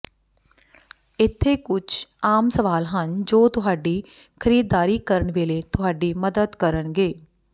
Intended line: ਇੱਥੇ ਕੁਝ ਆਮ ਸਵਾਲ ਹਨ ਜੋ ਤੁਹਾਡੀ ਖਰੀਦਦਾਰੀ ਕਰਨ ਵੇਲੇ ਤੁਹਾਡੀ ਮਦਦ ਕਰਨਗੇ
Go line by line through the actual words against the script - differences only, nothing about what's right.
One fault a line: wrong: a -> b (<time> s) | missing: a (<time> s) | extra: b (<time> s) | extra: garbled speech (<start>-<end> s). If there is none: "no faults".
no faults